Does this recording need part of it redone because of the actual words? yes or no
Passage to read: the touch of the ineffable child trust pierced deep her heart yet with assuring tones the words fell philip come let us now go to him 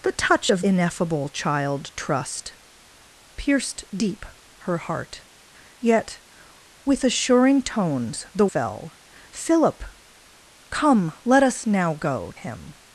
yes